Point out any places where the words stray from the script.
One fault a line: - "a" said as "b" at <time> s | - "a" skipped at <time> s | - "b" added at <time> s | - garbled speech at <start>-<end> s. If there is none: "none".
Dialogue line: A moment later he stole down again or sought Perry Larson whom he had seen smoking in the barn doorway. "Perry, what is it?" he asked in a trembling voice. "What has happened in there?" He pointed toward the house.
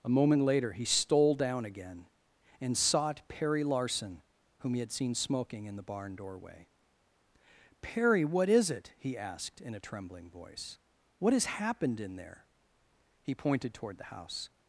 - "or" said as "and" at 2.6 s